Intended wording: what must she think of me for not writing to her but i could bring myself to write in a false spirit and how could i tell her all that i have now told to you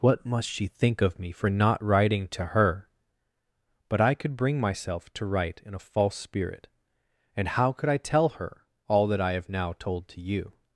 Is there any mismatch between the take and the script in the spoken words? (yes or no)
no